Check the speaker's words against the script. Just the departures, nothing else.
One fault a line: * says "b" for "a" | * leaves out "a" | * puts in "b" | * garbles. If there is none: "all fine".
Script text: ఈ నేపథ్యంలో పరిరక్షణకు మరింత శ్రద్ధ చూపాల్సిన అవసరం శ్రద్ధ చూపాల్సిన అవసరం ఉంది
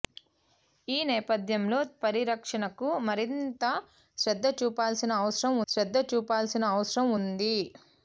all fine